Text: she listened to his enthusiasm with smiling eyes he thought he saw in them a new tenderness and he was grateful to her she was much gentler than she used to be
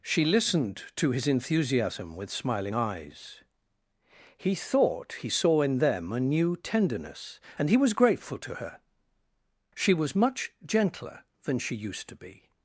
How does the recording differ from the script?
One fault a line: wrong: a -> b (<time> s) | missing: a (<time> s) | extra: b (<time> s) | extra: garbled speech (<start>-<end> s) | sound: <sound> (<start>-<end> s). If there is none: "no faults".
no faults